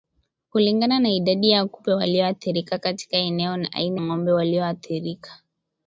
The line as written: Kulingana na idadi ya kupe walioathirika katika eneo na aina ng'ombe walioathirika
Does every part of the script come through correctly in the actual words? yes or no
yes